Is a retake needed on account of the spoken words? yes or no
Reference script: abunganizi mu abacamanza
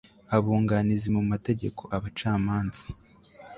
yes